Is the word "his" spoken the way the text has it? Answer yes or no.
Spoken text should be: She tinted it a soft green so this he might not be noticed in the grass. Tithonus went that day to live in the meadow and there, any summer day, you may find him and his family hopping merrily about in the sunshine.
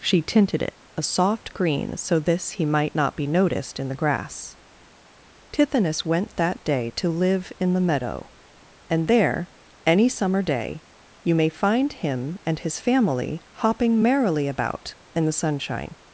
yes